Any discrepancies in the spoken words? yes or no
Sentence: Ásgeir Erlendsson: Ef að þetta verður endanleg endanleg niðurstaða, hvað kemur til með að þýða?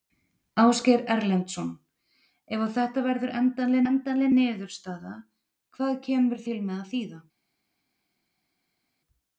no